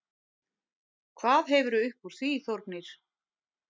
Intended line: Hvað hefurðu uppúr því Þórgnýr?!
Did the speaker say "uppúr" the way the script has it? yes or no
yes